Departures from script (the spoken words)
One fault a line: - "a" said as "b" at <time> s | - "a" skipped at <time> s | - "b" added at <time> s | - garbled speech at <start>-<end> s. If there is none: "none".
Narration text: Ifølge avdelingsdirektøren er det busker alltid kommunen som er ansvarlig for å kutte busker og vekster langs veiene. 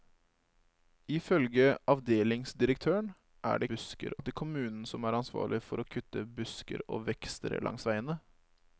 none